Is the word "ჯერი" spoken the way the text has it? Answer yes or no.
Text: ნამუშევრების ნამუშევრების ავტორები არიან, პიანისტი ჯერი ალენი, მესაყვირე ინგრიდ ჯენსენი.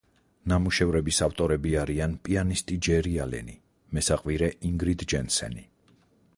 yes